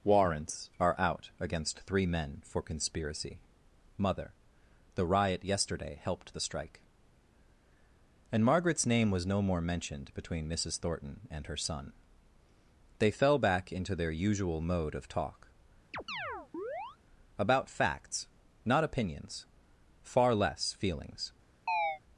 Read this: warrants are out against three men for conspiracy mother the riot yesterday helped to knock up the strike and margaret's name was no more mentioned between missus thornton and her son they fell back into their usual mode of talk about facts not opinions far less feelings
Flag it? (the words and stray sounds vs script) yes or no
yes